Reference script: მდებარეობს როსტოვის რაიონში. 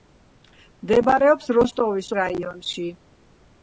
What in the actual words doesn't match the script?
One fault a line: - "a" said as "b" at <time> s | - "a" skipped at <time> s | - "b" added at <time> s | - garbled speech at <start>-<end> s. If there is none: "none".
none